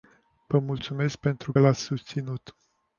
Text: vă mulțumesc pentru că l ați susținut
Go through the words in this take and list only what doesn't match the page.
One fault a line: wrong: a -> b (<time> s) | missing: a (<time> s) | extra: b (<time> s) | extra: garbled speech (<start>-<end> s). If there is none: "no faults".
missing: că (1.5 s)